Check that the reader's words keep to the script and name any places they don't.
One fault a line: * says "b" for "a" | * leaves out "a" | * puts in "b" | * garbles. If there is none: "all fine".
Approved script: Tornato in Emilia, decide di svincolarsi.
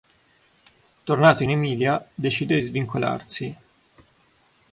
all fine